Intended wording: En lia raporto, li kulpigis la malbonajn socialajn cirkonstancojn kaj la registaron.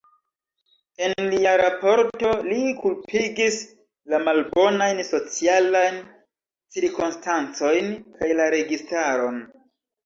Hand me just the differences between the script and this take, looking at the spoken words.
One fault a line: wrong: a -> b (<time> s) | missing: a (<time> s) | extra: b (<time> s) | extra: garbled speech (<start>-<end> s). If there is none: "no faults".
no faults